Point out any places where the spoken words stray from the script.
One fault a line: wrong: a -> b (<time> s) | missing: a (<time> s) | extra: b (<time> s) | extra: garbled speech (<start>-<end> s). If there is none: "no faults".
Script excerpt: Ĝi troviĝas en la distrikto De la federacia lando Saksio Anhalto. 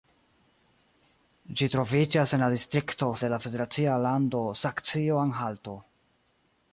no faults